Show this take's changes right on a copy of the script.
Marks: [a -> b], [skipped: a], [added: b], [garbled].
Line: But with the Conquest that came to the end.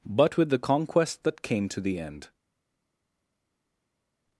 But with the Conquest that came to the end.